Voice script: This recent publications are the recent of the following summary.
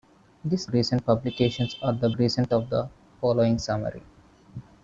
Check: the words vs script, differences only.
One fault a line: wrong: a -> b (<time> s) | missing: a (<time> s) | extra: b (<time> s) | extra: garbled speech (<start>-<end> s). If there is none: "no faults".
no faults